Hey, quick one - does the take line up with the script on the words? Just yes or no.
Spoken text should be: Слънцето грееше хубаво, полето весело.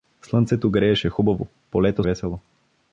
yes